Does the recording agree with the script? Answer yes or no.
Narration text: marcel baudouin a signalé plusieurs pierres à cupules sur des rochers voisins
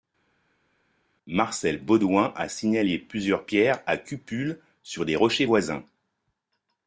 yes